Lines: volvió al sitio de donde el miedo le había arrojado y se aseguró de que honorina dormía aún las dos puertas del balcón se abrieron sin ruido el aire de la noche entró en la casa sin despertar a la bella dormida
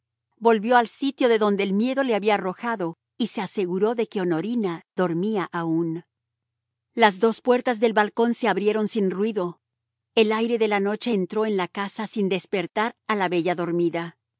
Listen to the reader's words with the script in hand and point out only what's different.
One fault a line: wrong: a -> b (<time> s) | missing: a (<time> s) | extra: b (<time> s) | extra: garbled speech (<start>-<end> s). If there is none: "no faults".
no faults